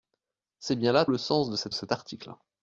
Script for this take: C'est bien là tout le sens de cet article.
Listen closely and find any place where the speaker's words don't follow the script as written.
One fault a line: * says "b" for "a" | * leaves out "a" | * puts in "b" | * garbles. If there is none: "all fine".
* leaves out "tout"
* puts in "cet"